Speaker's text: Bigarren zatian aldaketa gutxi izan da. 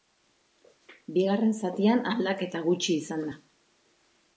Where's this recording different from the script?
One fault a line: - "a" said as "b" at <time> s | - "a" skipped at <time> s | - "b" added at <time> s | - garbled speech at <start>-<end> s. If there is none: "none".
none